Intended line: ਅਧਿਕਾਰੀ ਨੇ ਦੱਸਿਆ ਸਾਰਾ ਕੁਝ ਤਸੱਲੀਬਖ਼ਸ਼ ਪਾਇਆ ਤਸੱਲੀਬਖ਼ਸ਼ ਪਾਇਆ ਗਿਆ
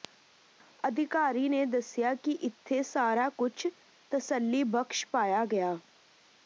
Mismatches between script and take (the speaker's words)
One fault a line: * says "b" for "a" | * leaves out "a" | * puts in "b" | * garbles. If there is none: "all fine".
* puts in "ਕਿ ਇੱਥੇ"
* leaves out "ਤਸੱਲੀਬਖ਼ਸ਼ ਪਾਇਆ"